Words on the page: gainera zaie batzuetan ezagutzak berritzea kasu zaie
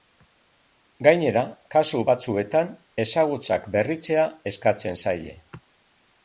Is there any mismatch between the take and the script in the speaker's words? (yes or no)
yes